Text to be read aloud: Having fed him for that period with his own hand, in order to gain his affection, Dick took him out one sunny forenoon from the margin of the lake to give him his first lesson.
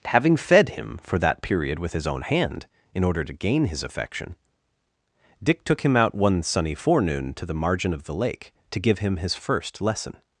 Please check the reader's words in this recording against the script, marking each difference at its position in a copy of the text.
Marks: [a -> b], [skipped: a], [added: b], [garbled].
Having fed him for that period with his own hand, in order to gain his affection, Dick took him out one sunny forenoon [from -> to] the margin of the lake to give him his first lesson.